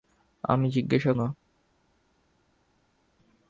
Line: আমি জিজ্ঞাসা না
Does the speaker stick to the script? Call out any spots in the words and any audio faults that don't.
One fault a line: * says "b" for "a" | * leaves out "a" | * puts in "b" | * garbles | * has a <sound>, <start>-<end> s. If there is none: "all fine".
all fine